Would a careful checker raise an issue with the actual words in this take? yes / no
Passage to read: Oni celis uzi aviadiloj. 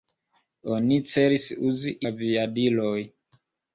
no